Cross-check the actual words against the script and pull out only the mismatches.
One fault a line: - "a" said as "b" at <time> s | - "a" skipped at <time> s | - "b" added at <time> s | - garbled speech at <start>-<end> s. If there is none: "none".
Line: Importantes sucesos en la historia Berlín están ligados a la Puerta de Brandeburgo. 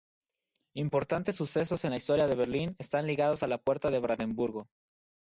- "de" added at 2.3 s